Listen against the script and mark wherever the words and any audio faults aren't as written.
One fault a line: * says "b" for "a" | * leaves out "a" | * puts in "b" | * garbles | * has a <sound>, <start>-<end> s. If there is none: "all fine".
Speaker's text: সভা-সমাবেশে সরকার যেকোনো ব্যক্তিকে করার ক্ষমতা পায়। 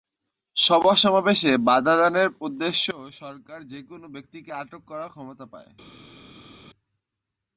* puts in "বাধা দানের উদ্দেশ্যেও"
* puts in "আটক"